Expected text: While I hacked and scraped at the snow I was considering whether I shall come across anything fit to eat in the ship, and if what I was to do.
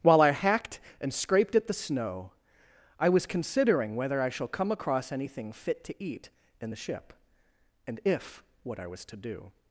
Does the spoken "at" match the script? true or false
true